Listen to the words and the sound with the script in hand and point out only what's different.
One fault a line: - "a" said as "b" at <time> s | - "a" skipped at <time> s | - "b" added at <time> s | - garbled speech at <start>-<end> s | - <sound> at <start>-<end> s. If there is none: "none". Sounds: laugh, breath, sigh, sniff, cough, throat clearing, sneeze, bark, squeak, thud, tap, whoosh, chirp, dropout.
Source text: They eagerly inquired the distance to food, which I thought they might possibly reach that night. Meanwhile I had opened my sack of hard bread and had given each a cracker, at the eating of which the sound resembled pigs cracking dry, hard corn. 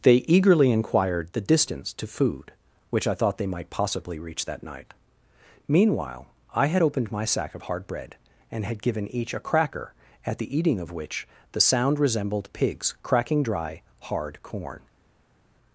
none